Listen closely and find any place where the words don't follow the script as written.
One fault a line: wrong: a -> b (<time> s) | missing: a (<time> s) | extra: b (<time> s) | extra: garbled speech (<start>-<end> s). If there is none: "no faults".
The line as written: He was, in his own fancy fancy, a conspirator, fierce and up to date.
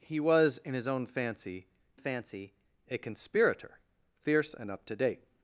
no faults